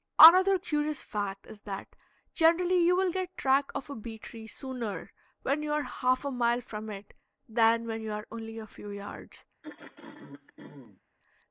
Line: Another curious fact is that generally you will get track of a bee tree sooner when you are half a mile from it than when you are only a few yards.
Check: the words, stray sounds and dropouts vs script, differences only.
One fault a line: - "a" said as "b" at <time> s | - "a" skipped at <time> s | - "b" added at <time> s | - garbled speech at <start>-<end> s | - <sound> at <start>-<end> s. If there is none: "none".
- throat clearing at 9.6-11.0 s